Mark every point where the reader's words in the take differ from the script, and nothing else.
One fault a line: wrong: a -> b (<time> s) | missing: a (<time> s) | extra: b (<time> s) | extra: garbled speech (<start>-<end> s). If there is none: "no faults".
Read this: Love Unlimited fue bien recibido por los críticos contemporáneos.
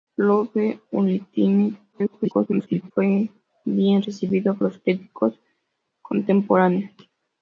extra: garbled speech (1.9-2.9 s)
missing: por (4.6 s)